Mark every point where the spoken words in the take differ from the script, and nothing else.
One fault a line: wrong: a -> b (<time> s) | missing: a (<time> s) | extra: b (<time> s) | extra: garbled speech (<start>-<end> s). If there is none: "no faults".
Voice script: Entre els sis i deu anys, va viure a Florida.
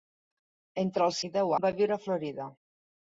missing: sis (1.2 s)
missing: anys (1.5 s)